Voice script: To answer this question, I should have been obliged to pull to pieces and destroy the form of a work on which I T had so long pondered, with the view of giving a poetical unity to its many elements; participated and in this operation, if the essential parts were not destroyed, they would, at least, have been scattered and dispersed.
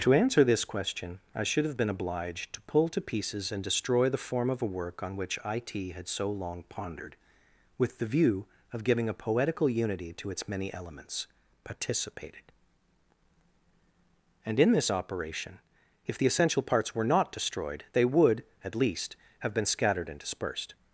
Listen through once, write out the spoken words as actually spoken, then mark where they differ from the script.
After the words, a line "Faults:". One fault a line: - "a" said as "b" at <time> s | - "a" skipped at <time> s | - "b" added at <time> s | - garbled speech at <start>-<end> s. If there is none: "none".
To answer this question, I should have been obliged to pull to pieces and destroy the form of a work on which I T had so long pondered, with the view of giving a poetical unity to its many elements; participated and in this operation, if the essential parts were not destroyed, they would, at least, have been scattered and dispersed.
Faults:
none